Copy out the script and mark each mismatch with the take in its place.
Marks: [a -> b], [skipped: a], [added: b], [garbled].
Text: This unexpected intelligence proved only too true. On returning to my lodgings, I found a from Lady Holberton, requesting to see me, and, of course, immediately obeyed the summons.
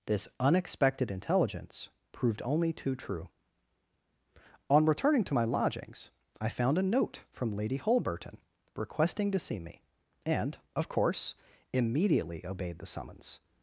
This unexpected intelligence proved only too true. On returning to my lodgings, I found a [added: note] from Lady Holberton, requesting to see me, and, of course, immediately obeyed the summons.